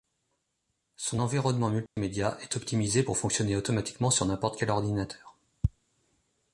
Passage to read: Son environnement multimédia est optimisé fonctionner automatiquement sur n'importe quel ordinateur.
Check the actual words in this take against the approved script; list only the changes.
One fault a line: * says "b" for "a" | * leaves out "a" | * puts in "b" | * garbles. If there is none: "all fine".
* puts in "pour"